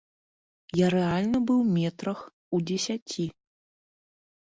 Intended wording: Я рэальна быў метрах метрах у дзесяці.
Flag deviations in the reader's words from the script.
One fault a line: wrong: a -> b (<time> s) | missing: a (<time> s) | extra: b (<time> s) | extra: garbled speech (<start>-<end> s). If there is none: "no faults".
missing: метрах (2.2 s)